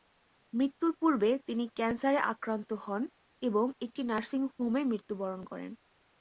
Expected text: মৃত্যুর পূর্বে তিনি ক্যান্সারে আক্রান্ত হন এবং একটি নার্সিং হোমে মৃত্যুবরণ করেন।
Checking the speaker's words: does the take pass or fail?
pass